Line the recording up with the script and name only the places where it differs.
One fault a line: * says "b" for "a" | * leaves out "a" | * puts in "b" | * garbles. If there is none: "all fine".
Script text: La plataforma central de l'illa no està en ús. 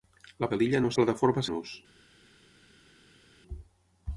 * leaves out "plataforma central"
* says "plataforma" for "està"